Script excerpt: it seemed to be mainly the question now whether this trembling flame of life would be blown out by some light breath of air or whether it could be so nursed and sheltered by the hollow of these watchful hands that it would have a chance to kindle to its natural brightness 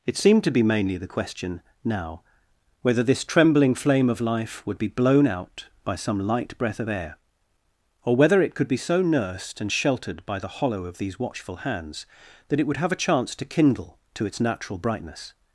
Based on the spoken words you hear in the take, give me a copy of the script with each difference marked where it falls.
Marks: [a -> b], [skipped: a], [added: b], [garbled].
it seemed to be mainly the question now whether this trembling flame of life would be blown out by some light breath of air or whether it could be so nursed and sheltered by the hollow of these watchful hands that it would have a chance to kindle to its natural brightness